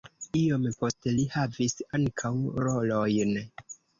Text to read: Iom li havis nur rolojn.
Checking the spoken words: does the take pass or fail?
fail